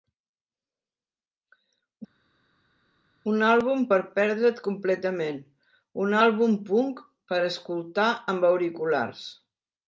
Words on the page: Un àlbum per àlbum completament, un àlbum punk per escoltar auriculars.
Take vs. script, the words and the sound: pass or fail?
fail